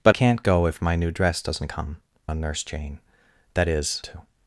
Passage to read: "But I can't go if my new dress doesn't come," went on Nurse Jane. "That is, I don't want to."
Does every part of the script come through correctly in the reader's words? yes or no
no